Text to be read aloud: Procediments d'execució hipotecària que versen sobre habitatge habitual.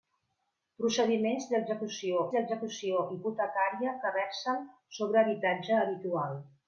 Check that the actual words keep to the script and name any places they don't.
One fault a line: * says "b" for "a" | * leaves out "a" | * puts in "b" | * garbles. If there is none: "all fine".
* puts in "d'execució"